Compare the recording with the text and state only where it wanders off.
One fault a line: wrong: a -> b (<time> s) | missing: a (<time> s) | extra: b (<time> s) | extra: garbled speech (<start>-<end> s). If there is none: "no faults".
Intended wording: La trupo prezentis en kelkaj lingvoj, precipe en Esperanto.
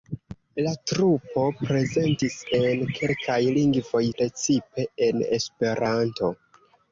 no faults